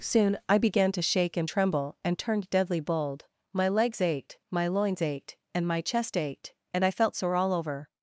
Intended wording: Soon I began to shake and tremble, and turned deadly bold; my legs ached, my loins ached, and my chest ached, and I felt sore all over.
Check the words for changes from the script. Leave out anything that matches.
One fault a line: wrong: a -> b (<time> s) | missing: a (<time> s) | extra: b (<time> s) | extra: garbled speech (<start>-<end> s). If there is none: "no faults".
no faults